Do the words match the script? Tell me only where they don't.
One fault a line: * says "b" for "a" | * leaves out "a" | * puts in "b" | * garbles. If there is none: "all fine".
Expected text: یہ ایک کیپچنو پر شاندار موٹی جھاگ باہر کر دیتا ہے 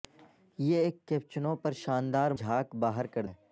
* leaves out "موٹی"
* leaves out "دیتا"